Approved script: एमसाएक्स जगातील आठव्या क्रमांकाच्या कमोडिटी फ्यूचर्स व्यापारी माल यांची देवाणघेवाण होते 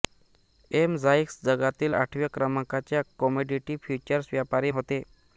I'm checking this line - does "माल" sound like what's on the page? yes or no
no